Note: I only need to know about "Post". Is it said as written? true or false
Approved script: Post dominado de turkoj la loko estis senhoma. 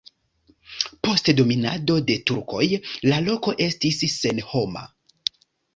true